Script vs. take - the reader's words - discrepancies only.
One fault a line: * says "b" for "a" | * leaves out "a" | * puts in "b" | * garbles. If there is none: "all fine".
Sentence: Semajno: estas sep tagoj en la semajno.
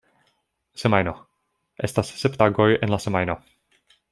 all fine